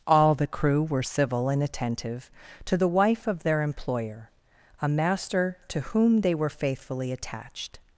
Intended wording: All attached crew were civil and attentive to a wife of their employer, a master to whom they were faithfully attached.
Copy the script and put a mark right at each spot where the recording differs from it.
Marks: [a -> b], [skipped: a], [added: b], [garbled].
All [attached -> the] crew were civil and attentive to [a -> the] wife of their employer, a master to whom they were faithfully attached.